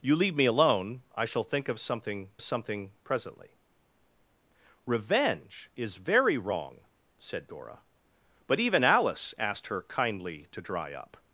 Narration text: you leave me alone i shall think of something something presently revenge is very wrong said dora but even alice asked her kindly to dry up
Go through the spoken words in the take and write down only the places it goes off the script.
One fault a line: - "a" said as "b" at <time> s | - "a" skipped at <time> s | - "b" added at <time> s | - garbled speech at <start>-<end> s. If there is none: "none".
none